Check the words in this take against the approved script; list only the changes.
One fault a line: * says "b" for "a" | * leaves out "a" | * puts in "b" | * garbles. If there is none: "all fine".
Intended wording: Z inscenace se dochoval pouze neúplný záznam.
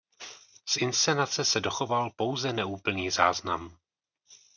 all fine